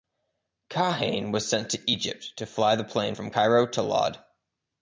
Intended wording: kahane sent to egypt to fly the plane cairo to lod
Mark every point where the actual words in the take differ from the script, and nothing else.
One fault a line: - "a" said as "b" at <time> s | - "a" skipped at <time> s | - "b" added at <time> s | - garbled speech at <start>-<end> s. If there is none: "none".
- "was" added at 1.3 s
- "from" added at 3.1 s